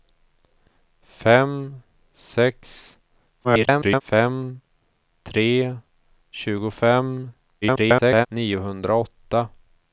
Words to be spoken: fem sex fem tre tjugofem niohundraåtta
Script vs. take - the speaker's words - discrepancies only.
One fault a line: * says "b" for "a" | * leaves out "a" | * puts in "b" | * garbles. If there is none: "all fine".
* garbles
* garbles